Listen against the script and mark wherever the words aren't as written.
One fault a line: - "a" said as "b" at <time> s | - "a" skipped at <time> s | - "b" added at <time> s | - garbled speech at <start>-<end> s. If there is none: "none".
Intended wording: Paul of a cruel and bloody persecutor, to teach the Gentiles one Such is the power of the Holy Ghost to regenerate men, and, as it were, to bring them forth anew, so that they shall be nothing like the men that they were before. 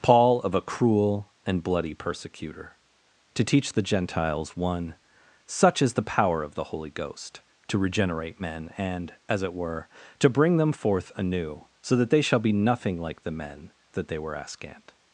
- "before" said as "askant" at 14.4 s